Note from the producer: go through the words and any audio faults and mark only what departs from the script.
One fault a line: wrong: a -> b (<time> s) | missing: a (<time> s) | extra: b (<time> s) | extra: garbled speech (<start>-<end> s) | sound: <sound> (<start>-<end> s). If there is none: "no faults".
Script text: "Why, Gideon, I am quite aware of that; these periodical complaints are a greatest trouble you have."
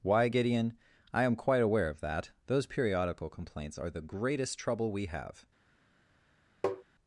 wrong: these -> those (2.5 s)
wrong: a -> the (3.9 s)
wrong: you -> we (4.9 s)
sound: tap (6.6-6.8 s)